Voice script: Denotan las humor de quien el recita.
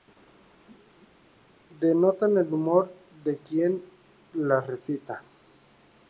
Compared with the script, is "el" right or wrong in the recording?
wrong